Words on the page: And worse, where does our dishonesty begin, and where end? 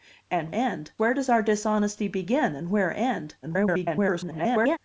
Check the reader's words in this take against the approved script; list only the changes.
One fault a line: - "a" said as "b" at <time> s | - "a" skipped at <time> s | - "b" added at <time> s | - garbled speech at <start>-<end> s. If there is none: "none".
- "worse" said as "end" at 0.5 s
- garbled speech at 3.4-4.8 s